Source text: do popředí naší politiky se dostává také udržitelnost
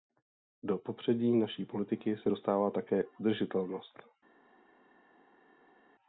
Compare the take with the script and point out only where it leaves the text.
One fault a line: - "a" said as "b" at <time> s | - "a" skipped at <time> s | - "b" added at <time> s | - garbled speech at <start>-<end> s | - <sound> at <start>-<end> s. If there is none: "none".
none